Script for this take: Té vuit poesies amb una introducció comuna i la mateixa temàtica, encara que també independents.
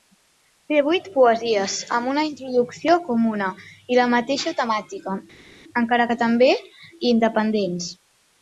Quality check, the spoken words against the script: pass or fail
pass